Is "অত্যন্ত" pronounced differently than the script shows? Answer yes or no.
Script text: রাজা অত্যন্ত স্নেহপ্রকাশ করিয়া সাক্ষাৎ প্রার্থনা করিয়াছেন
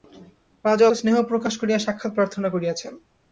yes